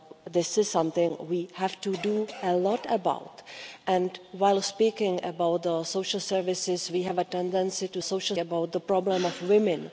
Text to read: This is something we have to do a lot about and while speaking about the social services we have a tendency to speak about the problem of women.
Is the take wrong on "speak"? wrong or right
wrong